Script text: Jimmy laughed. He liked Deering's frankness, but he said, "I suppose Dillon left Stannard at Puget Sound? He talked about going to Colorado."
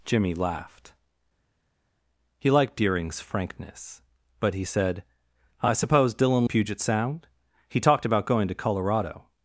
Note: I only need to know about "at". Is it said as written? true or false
false